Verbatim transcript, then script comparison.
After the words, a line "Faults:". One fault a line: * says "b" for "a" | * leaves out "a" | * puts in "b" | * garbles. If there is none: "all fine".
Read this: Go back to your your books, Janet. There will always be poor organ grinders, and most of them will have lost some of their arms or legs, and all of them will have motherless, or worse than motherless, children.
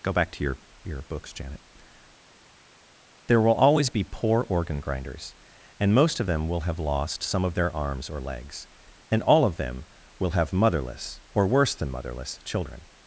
Go back to your your books, Janet. There will always be poor organ grinders, and most of them will have lost some of their arms or legs, and all of them will have motherless, or worse than motherless, children.
Faults:
all fine